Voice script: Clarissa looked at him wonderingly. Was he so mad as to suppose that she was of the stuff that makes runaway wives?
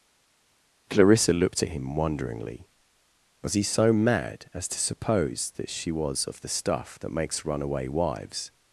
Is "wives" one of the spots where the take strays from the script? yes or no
no